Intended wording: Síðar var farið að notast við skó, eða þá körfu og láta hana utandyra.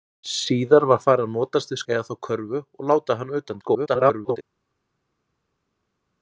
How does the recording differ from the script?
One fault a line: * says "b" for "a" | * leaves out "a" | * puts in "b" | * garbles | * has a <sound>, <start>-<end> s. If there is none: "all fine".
* leaves out "skó"
* garbles